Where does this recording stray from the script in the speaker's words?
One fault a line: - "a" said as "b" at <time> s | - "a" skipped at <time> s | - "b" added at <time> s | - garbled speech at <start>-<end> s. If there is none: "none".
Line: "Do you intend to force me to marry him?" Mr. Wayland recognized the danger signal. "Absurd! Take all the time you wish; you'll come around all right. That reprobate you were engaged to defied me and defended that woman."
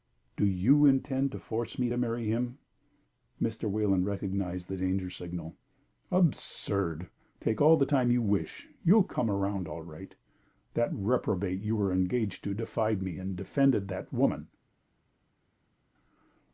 none